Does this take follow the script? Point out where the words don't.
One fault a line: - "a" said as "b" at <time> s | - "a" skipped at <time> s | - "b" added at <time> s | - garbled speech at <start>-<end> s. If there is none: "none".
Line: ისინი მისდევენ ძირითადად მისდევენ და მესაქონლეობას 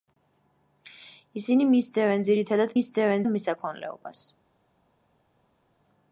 none